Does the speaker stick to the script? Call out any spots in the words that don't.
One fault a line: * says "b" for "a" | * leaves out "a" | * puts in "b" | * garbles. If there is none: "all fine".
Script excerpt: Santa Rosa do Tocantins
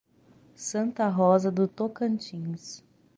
all fine